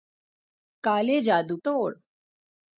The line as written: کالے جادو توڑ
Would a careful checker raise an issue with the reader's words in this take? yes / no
no